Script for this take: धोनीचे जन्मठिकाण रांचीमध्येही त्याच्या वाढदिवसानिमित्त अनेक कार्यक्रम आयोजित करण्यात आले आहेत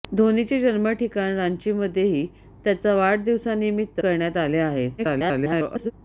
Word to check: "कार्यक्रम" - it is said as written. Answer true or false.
false